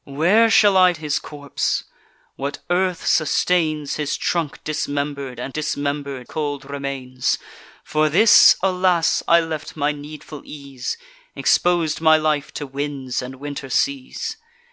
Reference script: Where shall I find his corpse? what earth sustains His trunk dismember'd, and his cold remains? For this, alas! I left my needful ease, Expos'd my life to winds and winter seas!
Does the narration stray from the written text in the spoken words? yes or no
yes